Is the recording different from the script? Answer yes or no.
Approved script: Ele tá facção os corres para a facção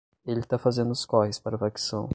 yes